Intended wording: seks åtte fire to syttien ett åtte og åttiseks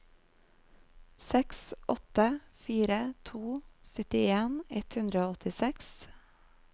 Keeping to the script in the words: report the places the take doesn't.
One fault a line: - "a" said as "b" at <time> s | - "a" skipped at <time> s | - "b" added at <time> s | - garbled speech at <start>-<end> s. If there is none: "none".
- "åtte" said as "hundre" at 5.0 s